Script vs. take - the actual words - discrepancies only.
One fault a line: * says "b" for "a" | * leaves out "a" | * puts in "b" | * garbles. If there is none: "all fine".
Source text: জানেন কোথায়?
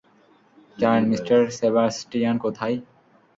* puts in "মিস্টার সেবাস্টিয়ান"